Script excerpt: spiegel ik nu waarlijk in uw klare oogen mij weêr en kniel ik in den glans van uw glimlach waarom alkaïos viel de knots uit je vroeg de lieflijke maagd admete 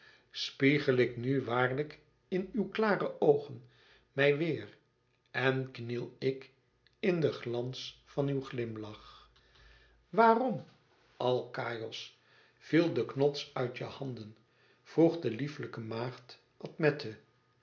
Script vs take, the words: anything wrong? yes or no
yes